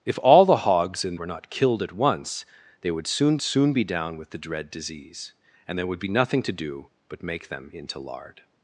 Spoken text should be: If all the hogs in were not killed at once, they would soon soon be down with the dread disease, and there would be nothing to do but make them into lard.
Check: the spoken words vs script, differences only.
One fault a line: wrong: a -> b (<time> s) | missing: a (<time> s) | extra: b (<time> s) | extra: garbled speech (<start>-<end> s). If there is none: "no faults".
no faults